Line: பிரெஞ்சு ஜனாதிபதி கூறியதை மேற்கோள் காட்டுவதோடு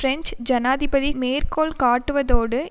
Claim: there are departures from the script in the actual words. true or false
true